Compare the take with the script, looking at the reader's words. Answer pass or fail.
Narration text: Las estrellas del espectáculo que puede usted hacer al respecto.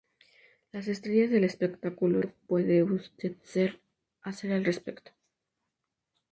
pass